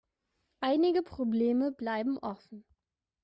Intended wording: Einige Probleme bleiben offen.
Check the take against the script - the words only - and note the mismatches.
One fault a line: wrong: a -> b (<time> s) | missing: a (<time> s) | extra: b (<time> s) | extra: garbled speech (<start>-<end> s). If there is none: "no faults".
no faults